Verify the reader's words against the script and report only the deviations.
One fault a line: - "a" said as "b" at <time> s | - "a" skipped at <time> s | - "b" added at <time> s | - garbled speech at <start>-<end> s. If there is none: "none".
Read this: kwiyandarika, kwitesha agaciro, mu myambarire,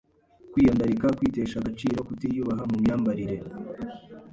- "kutiyubaha" added at 2.1 s